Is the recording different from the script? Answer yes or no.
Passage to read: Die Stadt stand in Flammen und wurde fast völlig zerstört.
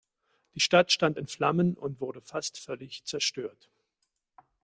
no